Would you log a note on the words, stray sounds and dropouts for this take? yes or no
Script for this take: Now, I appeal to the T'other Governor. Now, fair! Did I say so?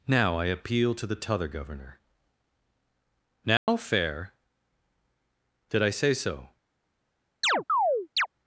yes